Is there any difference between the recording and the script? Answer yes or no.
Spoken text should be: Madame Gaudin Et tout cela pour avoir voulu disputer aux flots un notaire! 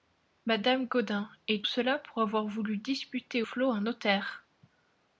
yes